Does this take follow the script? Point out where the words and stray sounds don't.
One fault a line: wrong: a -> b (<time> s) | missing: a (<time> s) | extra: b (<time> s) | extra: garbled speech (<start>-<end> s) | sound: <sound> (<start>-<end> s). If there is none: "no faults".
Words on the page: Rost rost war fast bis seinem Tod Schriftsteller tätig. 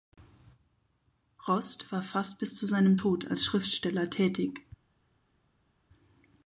missing: rost (1.9 s)
extra: zu (2.5 s)
extra: als (3.3 s)